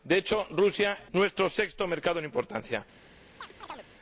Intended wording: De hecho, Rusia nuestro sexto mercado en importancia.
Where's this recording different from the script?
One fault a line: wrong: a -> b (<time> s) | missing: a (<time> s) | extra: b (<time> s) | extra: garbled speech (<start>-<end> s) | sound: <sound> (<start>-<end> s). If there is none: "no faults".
sound: chirp (3.4-3.9 s)